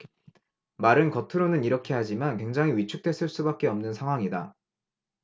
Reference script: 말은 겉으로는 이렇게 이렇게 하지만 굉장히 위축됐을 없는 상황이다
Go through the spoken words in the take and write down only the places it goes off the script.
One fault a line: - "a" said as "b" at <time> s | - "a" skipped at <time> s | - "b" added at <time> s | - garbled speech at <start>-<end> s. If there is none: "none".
- "이렇게" skipped at 1.9 s
- "수밖에" added at 3.3 s